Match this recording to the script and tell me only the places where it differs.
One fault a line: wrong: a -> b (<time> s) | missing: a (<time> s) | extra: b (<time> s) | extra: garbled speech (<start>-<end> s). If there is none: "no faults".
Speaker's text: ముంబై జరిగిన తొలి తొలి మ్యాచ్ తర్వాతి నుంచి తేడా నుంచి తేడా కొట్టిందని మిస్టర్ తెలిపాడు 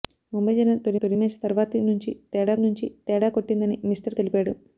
no faults